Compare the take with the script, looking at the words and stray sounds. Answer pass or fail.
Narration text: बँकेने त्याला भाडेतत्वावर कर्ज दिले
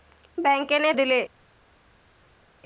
fail